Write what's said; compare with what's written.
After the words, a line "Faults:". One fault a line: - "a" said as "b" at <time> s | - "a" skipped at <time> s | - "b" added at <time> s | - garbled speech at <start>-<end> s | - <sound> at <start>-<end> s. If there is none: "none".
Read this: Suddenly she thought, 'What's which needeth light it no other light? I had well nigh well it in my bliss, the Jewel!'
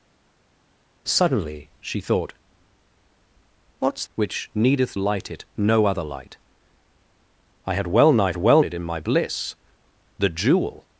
Suddenly she thought, 'What's which needeth light it no other light? I had well nigh well it in my bliss, the Jewel!'
Faults:
none